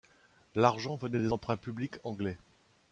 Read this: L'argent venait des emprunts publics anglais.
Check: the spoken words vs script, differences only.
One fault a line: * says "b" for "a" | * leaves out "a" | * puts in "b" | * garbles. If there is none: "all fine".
all fine